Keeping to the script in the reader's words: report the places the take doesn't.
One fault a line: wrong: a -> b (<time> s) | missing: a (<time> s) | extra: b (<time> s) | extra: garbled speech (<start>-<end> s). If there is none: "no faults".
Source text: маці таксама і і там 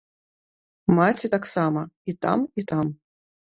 extra: там (2.1 s)